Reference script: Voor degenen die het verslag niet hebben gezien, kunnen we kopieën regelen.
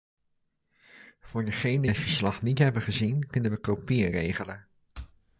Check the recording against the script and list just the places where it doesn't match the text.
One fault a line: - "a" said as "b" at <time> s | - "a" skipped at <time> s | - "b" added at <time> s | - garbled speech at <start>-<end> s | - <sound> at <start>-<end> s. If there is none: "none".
- "die" skipped at 1.9 s